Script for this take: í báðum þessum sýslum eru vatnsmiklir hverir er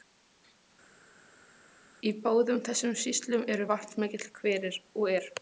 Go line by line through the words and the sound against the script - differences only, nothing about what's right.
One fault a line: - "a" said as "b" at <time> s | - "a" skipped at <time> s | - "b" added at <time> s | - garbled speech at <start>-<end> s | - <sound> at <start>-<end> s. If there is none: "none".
- "og" added at 5.0 s